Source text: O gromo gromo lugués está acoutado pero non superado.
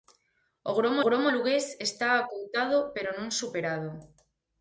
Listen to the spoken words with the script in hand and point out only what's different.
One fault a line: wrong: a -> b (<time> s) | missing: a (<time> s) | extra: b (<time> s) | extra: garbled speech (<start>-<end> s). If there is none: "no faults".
no faults